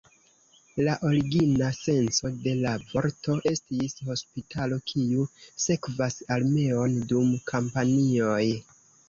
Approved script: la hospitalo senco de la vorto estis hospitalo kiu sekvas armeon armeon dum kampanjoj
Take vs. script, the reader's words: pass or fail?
fail